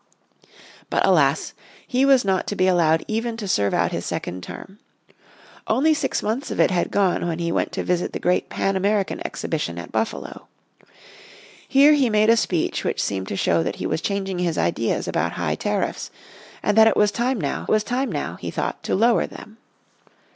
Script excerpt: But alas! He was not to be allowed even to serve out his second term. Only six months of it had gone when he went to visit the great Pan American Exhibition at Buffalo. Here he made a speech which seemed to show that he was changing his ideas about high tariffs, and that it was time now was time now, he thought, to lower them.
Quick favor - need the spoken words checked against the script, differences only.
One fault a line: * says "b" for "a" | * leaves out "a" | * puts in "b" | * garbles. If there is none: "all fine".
all fine